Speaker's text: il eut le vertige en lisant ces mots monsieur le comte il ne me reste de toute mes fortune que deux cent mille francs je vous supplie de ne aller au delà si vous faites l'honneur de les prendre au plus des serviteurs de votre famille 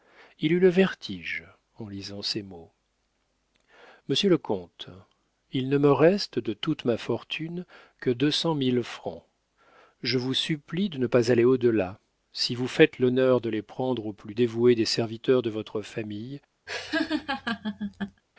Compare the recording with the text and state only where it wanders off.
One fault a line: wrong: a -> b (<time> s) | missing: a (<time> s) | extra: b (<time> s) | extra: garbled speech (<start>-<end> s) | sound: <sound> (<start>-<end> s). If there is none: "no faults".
wrong: mes -> ma (6.8 s)
extra: pas (11.1 s)
extra: dévoué (14.3 s)
sound: laugh (16.7-18.2 s)